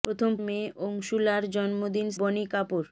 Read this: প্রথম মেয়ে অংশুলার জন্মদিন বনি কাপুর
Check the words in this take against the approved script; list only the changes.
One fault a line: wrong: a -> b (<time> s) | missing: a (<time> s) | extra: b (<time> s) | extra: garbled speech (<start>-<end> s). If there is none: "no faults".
no faults